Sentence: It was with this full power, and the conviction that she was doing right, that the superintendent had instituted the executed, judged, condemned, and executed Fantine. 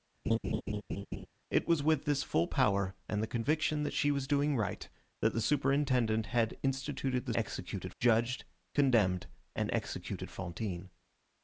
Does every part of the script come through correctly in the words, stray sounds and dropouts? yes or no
no